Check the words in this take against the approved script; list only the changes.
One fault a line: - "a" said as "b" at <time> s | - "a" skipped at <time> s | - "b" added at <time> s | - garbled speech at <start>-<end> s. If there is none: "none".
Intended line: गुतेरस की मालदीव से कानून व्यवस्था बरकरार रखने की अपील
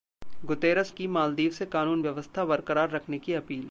none